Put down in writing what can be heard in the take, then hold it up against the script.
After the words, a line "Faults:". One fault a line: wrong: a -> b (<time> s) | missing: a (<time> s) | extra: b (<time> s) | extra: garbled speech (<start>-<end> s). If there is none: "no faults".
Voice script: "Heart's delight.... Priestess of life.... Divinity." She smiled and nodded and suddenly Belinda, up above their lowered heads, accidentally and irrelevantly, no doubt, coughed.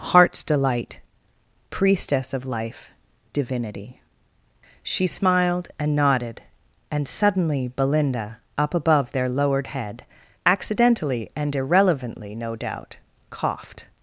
"Heart's delight.... Priestess of life.... Divinity." She smiled and nodded and suddenly Belinda, up above their lowered head, accidentally and irrelevantly, no doubt, coughed.
Faults:
wrong: heads -> head (9.6 s)